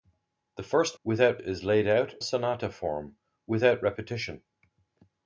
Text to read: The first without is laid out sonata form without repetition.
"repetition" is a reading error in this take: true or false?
false